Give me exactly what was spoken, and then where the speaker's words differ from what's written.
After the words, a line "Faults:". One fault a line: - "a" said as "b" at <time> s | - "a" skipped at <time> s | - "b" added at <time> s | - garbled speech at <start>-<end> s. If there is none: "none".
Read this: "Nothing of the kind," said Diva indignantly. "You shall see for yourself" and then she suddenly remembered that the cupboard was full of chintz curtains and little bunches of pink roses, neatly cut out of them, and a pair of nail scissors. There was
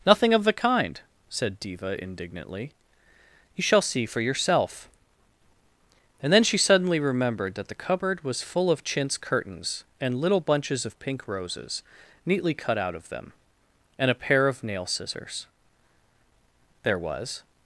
"Nothing of the kind," said Diva indignantly. "You shall see for yourself" and then she suddenly remembered that the cupboard was full of chintz curtains and little bunches of pink roses, neatly cut out of them, and a pair of nail scissors. There was
Faults:
none